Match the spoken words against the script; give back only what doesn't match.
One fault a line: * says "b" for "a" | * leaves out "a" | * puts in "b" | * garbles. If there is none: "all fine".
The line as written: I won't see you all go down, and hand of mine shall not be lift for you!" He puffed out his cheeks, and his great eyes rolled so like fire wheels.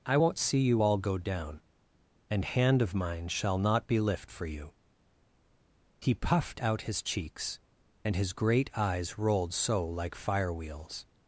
all fine